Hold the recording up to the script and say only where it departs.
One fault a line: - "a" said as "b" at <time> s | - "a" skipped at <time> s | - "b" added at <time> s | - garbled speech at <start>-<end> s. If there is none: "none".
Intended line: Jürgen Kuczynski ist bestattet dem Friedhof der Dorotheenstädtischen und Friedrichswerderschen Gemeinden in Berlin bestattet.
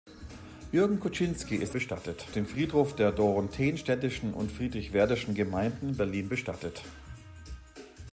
none